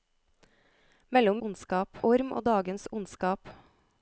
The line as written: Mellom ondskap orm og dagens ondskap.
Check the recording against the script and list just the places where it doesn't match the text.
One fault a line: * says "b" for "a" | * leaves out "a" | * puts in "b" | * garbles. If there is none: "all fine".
all fine